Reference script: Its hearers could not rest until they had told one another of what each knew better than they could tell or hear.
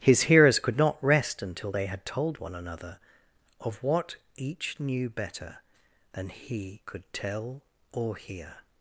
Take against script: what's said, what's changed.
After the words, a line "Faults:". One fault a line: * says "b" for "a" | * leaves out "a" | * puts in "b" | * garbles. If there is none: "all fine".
His hearers could not rest until they had told one another of what each knew better than he could tell or hear.
Faults:
* says "His" for "Its"
* says "he" for "they"